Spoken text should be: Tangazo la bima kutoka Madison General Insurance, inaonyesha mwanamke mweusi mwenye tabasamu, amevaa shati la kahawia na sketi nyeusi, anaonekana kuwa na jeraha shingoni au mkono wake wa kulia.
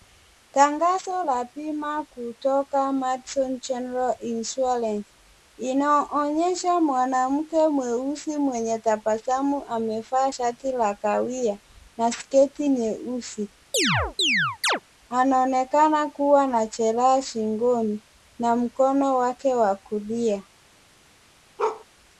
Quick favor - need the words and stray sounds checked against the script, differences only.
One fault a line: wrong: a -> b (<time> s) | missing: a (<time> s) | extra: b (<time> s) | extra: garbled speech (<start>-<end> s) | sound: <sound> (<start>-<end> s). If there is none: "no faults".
sound: chirp (13.7-14.8 s)
wrong: au -> na (18.4 s)
sound: bark (21.6-21.8 s)